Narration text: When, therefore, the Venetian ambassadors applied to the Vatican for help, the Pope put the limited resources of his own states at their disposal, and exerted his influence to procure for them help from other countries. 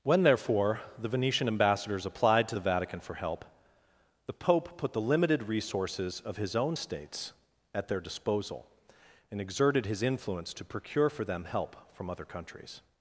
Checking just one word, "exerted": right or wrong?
right